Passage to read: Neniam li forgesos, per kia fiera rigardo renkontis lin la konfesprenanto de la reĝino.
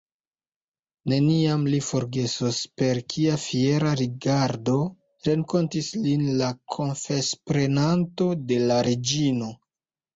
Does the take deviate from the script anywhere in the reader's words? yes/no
no